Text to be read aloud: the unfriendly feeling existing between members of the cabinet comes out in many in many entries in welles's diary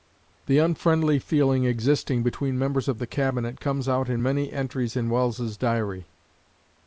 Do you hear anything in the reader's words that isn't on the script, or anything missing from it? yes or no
yes